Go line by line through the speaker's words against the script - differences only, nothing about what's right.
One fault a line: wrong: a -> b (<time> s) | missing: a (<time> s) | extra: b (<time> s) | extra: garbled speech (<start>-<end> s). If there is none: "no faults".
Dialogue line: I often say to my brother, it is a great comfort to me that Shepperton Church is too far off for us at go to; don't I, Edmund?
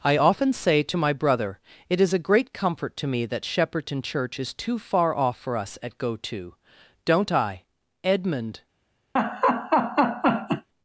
no faults